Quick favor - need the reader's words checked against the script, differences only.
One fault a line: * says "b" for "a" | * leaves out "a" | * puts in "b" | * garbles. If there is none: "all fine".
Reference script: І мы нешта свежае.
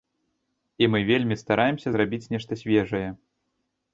* puts in "вельмі стараемся зрабіць"